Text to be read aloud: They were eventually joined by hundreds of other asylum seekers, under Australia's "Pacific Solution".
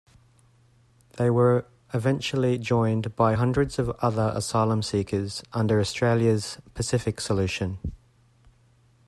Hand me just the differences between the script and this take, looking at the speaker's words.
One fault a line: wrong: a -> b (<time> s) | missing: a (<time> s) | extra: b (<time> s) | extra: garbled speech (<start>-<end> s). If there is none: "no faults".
no faults